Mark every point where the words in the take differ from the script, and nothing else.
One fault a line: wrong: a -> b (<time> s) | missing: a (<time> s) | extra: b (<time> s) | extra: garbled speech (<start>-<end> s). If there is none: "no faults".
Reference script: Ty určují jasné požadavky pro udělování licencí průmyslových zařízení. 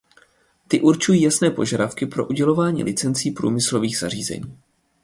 no faults